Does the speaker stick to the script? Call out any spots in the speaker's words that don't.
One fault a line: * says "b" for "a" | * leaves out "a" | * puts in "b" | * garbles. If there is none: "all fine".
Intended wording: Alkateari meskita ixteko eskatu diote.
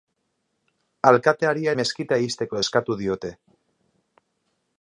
all fine